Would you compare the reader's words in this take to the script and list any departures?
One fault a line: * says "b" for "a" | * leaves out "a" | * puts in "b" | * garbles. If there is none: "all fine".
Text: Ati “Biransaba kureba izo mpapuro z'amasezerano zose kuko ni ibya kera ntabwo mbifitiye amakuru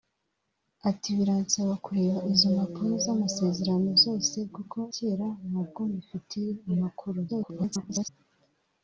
* leaves out "ni ibya"
* garbles